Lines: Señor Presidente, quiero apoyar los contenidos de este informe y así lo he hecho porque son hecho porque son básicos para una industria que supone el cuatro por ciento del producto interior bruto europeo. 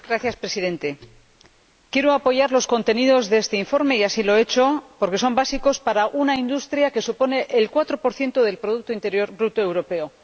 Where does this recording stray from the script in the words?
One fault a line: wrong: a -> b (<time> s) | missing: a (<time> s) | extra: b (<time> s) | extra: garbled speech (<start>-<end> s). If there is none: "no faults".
missing: hecho porque son (5.3 s)